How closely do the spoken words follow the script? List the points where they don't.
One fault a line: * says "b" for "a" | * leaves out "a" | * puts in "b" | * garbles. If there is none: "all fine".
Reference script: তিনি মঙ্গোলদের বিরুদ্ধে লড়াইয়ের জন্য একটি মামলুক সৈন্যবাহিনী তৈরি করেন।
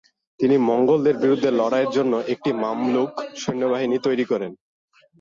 all fine